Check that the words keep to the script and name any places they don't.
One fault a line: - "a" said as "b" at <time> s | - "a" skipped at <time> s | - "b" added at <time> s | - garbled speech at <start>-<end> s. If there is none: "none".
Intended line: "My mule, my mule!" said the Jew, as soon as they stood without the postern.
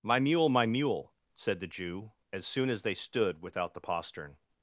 none